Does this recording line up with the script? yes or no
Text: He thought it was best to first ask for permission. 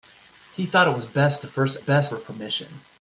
no